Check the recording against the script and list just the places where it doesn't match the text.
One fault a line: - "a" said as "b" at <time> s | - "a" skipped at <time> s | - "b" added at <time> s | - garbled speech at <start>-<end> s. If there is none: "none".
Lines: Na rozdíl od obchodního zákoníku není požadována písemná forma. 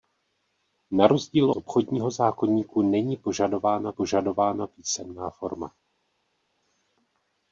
- "od" skipped at 1.5 s
- "požadována" added at 3.9 s